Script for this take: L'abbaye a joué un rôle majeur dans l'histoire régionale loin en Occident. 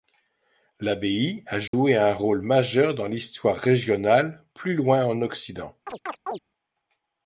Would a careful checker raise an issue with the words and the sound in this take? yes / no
yes